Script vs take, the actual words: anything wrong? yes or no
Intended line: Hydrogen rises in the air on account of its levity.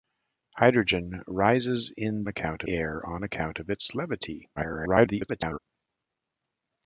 yes